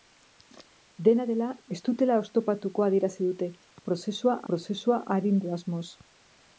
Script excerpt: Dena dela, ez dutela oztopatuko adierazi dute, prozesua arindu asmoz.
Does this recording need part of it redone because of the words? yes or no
yes